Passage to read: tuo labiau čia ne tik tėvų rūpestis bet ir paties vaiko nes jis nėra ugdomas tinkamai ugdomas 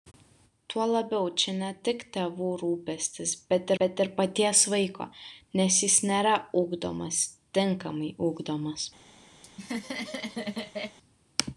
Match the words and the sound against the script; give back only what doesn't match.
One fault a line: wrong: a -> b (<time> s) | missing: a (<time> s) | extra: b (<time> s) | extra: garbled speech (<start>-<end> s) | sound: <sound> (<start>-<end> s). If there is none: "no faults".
extra: bet (3.8 s)
sound: laugh (9.4-11.0 s)